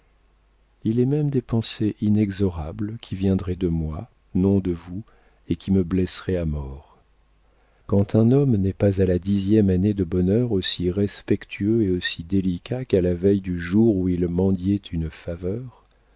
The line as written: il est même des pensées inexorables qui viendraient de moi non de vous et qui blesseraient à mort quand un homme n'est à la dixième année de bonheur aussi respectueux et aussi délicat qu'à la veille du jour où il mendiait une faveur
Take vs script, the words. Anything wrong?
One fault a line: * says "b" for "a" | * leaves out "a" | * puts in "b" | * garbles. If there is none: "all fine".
* puts in "me"
* puts in "pas"